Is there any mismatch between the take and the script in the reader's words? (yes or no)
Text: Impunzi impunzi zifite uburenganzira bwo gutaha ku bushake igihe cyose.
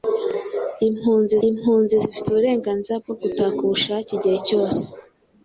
no